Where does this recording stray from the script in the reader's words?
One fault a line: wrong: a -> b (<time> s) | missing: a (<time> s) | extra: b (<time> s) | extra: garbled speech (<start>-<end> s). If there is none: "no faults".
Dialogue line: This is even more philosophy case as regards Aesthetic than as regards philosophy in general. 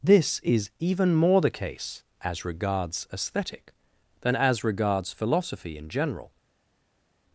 wrong: philosophy -> the (1.4 s)